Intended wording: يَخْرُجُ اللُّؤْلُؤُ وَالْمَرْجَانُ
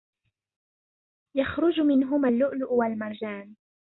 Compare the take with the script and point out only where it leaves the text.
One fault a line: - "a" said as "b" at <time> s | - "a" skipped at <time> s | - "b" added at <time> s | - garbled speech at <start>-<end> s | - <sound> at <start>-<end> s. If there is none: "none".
- "مِنْهُمَا" added at 1.8 s